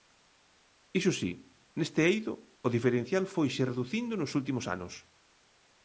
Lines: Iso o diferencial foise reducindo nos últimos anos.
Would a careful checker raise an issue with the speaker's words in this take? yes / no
yes